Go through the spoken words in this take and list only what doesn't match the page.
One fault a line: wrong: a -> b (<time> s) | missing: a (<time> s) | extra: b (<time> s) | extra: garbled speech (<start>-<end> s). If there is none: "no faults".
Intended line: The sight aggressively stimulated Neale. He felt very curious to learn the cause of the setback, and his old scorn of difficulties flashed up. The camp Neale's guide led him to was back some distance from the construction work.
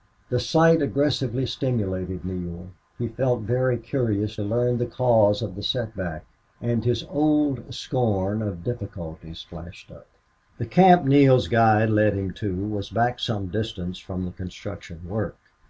missing: to (4.3 s)